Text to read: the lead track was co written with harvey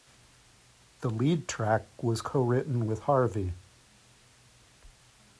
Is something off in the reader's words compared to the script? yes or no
no